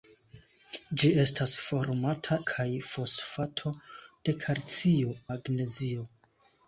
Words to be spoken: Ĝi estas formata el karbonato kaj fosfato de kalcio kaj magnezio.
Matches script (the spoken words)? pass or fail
fail